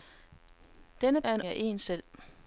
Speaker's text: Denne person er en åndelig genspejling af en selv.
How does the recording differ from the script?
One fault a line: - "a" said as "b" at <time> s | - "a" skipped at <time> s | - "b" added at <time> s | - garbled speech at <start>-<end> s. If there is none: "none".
- "person" skipped at 1.2 s
- "åndelig genspejling" skipped at 1.4 s